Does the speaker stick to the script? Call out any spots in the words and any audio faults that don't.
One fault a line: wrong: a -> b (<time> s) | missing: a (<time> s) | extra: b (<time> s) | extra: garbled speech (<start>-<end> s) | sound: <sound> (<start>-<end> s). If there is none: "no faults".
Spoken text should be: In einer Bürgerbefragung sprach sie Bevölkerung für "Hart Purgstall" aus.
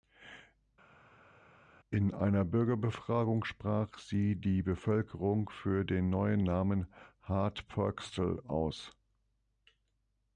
extra: die (4.4 s)
extra: den neuen Namen (5.8 s)